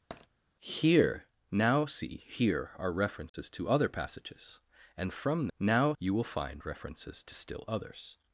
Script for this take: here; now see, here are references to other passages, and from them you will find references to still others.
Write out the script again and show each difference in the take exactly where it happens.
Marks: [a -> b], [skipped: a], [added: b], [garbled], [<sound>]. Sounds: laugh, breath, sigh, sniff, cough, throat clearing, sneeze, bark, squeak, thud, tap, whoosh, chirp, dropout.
[tap] here; now see, here are references [dropout] to other passages, and from [them -> now] you will find references to still others.